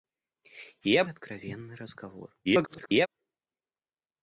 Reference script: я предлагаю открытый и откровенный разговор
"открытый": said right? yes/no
no